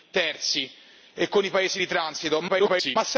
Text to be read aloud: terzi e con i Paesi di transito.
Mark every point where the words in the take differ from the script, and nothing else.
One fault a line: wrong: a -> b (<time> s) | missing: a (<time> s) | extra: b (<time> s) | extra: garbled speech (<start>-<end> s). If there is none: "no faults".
extra: garbled speech (2.5-3.0 s)